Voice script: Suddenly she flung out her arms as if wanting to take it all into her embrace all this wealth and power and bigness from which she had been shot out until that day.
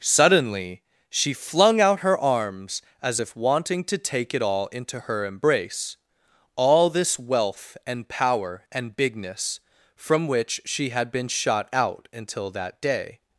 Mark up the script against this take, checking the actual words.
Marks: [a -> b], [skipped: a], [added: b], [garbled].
Suddenly she flung out her arms as if wanting to take it all into her embrace all this wealth and power and bigness from which she had been shot out until that day.